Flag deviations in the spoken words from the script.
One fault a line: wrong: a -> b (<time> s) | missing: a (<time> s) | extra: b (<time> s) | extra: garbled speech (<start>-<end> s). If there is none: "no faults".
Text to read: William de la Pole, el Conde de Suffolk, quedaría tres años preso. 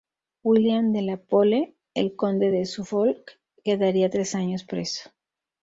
no faults